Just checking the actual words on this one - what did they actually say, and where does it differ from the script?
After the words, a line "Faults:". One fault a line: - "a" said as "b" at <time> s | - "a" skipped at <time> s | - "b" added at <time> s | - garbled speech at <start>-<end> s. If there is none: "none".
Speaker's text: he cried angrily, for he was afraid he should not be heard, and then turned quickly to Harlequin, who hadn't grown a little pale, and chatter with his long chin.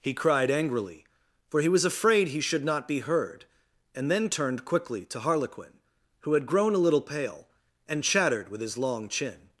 he cried angrily, for he was afraid he should not be heard, and then turned quickly to Harlequin, who had grown a little pale, and chattered with his long chin.
Faults:
- "hadn't" said as "had" at 6.3 s
- "chatter" said as "chattered" at 8.0 s